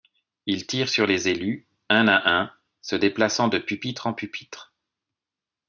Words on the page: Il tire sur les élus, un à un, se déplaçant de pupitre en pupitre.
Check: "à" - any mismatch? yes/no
no